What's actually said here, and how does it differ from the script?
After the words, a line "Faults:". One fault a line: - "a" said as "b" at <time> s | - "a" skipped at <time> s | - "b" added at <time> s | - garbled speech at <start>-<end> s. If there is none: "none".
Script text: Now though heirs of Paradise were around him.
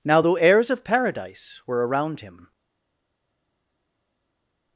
Now though heirs of Paradise were around him.
Faults:
none